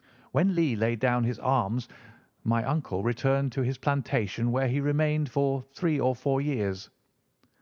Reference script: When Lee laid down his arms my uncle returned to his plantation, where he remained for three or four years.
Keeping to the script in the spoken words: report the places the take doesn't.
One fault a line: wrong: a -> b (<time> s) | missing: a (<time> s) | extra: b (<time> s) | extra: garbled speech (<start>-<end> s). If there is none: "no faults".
no faults